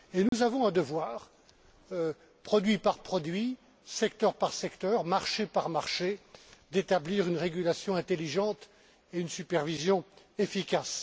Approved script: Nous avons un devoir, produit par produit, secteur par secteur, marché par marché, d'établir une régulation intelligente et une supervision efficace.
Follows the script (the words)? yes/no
yes